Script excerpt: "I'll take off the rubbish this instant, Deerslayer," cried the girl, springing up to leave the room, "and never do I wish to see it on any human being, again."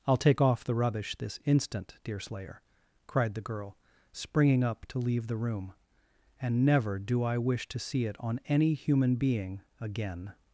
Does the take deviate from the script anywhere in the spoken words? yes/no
no